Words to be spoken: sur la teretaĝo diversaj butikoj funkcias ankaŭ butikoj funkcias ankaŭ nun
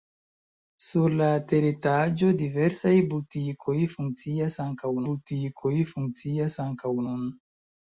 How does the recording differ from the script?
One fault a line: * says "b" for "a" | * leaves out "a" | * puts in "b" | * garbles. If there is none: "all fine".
all fine